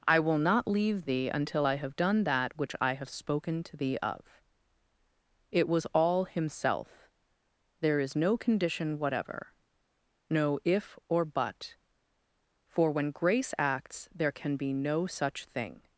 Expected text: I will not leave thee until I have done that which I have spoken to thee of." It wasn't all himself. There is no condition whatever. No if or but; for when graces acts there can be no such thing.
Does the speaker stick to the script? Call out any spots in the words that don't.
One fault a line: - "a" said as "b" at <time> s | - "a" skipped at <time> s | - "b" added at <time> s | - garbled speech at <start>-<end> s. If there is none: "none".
- "wasn't" said as "was" at 5.7 s
- "graces" said as "grace" at 13.1 s